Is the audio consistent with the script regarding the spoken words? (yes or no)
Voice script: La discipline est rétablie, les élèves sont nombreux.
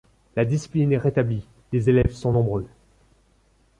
yes